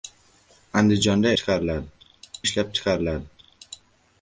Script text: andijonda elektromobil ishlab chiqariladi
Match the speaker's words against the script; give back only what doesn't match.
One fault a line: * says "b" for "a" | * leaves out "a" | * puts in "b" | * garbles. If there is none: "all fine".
* says "chiqariladi" for "elektromobil"